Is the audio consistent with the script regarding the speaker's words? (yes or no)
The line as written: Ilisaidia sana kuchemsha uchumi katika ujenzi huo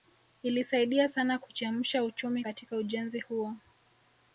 yes